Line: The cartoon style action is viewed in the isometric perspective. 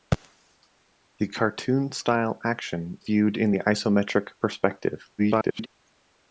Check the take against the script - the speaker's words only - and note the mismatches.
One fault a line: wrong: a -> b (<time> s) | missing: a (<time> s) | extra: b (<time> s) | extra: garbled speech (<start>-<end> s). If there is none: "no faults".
missing: is (3.0 s)
extra: garbled speech (5.2-5.7 s)